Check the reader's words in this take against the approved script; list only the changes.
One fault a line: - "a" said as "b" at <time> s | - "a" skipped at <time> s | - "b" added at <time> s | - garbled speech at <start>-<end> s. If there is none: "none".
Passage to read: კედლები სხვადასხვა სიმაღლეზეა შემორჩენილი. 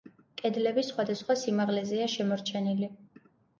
none